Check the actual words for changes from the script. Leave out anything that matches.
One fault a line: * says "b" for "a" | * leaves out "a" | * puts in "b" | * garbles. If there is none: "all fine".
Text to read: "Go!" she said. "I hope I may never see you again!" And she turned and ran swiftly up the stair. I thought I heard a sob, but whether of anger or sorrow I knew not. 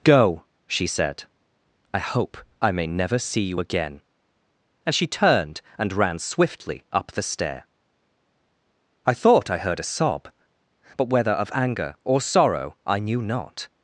all fine